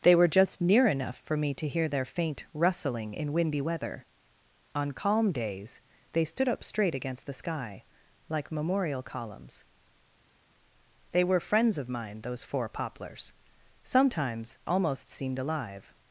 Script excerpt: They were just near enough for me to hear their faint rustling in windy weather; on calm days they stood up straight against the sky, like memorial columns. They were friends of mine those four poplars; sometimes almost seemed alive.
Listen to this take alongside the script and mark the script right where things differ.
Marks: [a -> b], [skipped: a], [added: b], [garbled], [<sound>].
They were just near enough for me to hear their faint rustling in windy weather; on calm days they stood up straight against the sky, like memorial columns. They were friends of mine those four poplars; sometimes almost seemed alive.